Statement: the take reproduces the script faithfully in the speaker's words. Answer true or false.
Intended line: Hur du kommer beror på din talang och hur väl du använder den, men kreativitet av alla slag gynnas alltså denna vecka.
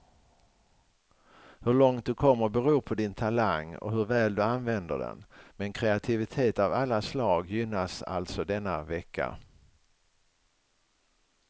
false